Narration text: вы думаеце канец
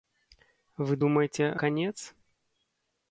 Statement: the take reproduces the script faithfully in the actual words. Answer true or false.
true